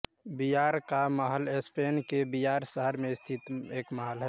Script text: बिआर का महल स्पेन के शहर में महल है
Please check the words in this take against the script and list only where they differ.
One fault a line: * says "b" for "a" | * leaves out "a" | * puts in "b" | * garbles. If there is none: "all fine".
* puts in "बिआर"
* puts in "स्थित एक"